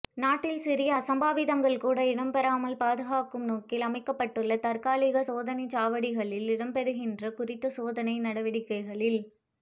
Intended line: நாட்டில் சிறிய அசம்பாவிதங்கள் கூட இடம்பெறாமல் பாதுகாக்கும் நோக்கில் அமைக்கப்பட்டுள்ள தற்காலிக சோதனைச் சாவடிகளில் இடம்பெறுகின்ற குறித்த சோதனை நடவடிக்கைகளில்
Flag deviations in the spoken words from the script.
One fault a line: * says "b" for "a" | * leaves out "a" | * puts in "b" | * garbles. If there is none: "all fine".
all fine